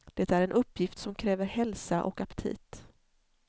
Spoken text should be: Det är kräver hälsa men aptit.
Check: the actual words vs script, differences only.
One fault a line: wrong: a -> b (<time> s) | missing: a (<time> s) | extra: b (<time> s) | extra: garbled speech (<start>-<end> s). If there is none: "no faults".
extra: en uppgift som (0.4 s)
wrong: men -> och (2.0 s)